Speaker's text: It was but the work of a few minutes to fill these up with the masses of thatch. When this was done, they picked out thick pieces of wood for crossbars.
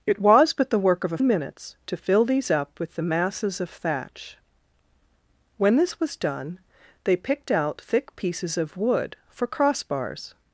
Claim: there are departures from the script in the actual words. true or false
true